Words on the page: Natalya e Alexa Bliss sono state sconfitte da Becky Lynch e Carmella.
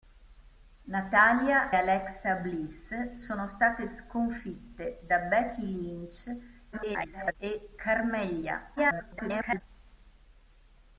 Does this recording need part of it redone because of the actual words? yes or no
yes